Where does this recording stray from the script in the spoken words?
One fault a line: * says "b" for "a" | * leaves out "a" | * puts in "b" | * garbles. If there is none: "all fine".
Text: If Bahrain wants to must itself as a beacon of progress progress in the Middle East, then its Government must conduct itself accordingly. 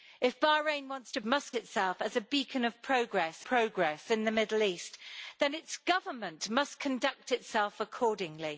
all fine